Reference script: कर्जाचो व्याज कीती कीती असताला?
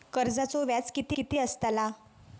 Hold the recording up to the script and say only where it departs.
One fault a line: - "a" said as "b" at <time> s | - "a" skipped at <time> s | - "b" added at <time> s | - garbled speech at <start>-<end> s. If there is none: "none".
none